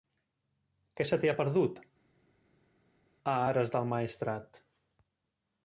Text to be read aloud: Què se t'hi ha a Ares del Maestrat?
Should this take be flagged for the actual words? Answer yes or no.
yes